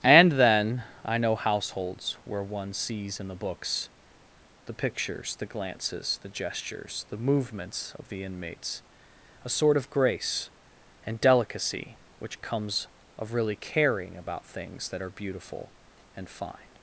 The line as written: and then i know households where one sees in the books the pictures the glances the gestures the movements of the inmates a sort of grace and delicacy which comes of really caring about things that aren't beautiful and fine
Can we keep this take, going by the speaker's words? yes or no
no